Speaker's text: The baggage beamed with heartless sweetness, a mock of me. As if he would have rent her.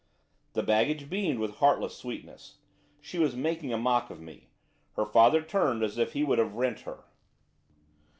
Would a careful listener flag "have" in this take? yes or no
no